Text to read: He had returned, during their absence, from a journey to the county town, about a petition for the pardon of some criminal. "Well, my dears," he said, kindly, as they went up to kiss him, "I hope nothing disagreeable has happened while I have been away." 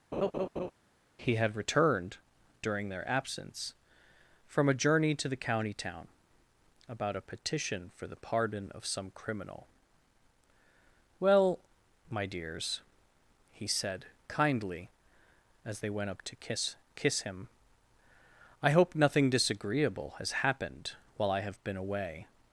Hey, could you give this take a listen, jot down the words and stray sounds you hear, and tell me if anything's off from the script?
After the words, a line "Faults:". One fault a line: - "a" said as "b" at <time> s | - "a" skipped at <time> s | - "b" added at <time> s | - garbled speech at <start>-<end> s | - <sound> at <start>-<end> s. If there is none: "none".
He had returned, during their absence, from a journey to the county town, about a petition for the pardon of some criminal. "Well, my dears," he said, kindly, as they went up to kiss kiss him, "I hope nothing disagreeable has happened while I have been away."
Faults:
- laugh at 0.1-0.7 s
- "kiss" added at 16.9 s